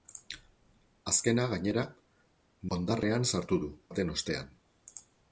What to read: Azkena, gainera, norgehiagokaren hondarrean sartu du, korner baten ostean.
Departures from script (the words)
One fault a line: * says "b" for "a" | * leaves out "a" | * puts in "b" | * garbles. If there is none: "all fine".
* leaves out "norgehiagokaren"
* leaves out "korner"